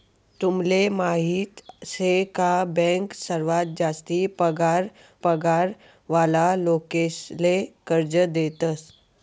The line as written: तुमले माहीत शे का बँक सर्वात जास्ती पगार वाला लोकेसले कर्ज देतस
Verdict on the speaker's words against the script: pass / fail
fail